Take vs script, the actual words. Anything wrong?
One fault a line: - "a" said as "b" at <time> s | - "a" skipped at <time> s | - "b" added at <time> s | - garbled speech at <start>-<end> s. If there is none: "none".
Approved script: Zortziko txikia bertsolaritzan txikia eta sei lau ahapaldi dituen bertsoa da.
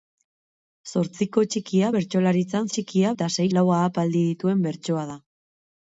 none